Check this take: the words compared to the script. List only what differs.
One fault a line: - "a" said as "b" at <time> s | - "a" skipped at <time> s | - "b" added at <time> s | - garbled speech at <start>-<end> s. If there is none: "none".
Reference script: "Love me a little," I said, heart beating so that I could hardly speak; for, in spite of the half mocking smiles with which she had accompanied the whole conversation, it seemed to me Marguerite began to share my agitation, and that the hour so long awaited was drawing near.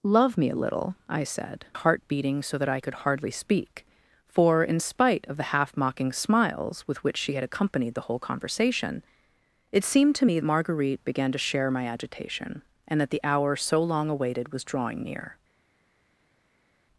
none